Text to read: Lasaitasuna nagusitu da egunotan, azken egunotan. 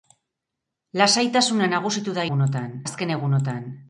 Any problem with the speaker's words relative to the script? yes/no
no